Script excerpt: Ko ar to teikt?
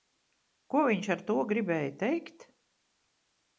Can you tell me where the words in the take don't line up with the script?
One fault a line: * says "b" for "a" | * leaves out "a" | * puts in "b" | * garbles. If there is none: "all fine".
* puts in "viņš"
* puts in "gribēja"